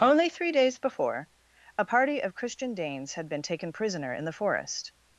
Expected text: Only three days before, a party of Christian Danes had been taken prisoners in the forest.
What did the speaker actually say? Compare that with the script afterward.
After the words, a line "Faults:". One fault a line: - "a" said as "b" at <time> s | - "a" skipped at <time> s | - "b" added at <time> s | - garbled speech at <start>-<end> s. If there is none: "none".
Only three days before, a party of Christian Danes had been taken prisoner in the forest.
Faults:
- "prisoners" said as "prisoner" at 3.7 s